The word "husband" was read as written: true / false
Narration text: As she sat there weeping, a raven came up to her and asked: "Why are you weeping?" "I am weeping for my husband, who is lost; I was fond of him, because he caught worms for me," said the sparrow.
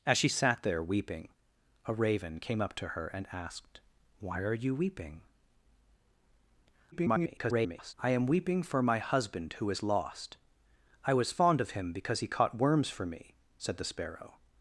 true